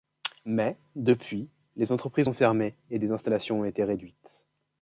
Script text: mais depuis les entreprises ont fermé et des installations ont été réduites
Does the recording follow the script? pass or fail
pass